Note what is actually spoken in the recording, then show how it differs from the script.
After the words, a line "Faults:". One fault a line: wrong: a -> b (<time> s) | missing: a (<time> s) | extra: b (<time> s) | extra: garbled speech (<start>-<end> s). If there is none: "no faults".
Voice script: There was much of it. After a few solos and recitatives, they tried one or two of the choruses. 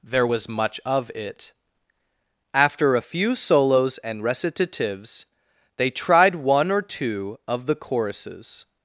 There was much of it. After a few solos and recitatives, they tried one or two of the choruses.
Faults:
no faults